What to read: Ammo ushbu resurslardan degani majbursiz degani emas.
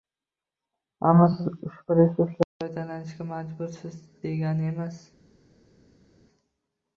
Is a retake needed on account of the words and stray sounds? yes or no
yes